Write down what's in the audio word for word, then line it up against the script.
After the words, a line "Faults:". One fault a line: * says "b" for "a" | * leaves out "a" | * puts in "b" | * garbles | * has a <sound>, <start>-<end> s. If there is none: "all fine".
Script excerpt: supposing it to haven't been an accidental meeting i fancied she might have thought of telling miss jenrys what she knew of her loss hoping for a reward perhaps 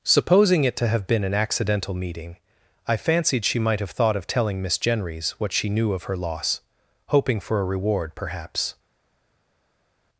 supposing it to have been an accidental meeting i fancied she might have thought of telling miss jenrys what she knew of her loss hoping for a reward perhaps
Faults:
* says "have" for "haven't"